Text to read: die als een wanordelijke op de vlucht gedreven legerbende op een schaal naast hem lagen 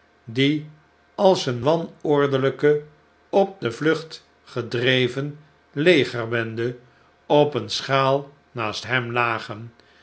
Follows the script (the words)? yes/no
yes